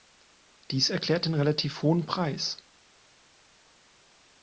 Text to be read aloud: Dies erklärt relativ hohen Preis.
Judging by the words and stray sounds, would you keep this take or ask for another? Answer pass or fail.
fail